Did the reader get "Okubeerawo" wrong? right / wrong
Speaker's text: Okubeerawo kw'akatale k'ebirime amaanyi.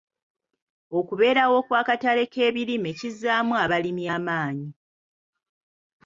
right